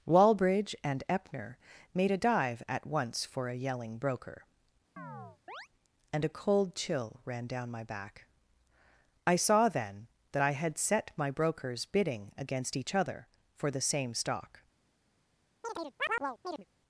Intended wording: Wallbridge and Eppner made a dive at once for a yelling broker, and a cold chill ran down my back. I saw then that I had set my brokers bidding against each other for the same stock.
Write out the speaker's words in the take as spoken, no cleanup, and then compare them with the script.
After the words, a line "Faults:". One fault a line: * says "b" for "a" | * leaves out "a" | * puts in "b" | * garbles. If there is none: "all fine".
Wallbridge and Eppner made a dive at once for a yelling broker, and a cold chill ran down my back. I saw then that I had set my brokers bidding against each other for the same stock.
Faults:
all fine